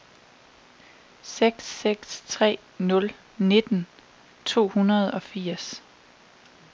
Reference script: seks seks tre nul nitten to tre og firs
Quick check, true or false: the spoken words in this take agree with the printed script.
false